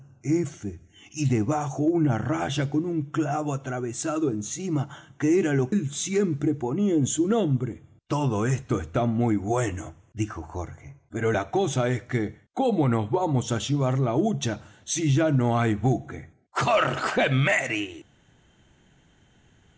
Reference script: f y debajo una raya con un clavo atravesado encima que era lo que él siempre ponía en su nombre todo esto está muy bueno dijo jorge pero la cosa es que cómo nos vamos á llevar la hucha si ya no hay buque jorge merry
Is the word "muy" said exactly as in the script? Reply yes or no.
yes